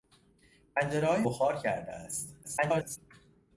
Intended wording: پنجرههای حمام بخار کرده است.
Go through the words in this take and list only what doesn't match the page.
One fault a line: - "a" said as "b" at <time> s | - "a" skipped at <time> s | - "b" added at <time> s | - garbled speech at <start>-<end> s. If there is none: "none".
- "حمام" skipped at 1.2 s
- garbled speech at 2.4-3.0 s